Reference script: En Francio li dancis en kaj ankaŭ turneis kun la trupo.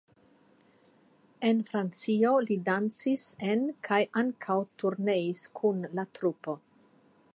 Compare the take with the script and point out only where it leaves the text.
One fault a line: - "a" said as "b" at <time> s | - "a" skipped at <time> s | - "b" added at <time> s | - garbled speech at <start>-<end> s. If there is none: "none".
none